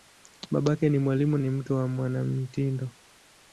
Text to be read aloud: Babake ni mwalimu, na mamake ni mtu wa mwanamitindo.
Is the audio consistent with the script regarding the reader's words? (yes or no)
no